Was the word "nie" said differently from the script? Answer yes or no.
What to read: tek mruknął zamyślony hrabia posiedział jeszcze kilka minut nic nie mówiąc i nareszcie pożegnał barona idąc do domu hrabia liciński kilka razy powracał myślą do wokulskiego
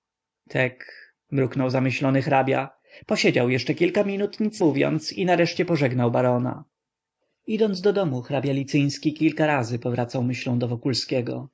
yes